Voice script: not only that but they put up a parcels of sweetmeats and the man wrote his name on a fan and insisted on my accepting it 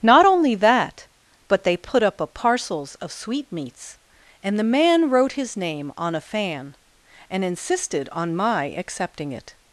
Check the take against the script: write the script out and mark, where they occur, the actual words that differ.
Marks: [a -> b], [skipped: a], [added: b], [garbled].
not only that but they put up a parcels of sweetmeats and the man wrote his name on a fan and insisted on my accepting it